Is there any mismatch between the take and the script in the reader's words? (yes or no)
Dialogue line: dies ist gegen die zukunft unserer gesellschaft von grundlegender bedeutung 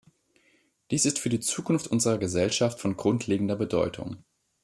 yes